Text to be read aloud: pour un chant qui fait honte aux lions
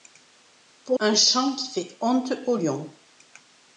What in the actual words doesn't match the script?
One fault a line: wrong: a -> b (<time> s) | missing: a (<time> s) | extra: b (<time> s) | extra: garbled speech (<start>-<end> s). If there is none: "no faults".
no faults